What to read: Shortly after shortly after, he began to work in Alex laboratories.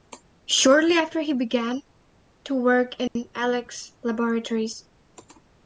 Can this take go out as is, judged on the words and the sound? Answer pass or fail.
fail